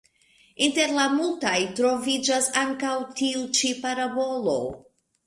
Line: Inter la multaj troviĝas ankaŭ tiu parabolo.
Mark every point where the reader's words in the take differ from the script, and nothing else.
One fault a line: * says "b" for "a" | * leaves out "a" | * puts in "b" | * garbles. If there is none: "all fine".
* puts in "ĉi"